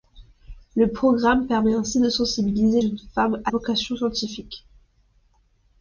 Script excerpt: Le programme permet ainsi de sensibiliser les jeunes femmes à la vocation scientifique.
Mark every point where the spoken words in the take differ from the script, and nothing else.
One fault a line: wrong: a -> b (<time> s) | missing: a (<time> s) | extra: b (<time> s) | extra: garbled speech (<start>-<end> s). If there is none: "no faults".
missing: les (2.8 s)
missing: la (3.5 s)